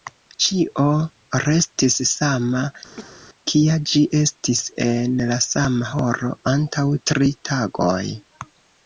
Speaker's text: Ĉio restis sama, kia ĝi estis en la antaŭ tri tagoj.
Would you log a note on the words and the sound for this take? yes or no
yes